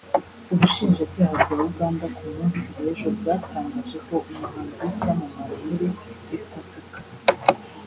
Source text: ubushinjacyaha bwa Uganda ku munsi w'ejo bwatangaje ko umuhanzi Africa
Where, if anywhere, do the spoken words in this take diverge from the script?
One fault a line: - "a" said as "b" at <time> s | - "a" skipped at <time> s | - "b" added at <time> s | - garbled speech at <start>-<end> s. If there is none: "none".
- "w'icyamamare muri East" added at 4.8 s